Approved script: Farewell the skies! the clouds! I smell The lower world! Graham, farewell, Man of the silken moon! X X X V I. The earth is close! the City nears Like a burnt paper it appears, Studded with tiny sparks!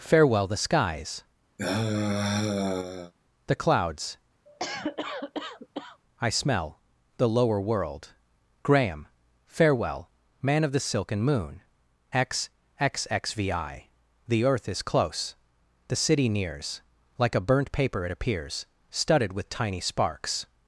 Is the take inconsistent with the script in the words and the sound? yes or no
yes